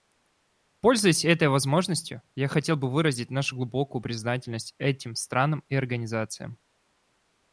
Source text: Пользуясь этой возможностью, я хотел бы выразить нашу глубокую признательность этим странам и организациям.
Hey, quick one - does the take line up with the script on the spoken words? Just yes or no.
yes